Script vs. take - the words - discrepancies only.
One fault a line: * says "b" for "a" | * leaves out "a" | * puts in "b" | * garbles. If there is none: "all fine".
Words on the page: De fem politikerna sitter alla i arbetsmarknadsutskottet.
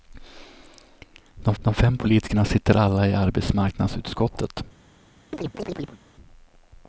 * puts in "de"